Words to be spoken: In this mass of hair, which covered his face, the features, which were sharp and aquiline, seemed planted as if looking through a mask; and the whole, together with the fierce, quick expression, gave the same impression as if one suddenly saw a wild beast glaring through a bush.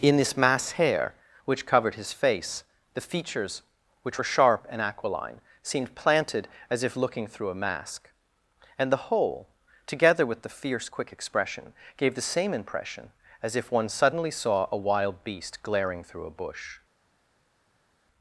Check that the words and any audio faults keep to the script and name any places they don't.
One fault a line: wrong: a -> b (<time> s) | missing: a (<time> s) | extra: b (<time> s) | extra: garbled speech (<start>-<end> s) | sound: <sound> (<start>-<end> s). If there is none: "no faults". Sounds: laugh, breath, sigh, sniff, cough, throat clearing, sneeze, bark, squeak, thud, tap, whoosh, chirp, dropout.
missing: of (0.7 s)